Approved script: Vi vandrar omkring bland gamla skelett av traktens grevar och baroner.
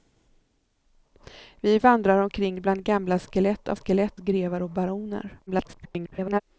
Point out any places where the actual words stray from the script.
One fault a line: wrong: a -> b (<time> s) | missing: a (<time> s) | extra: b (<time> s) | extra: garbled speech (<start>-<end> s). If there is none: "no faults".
wrong: traktens -> skelett (3.7 s)
extra: garbled speech (5.5-6.4 s)